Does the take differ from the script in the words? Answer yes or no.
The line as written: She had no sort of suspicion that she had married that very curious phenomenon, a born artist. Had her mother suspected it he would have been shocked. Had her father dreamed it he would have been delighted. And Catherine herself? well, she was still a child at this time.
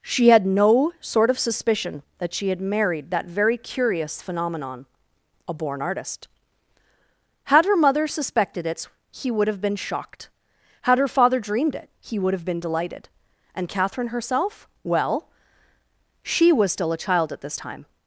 no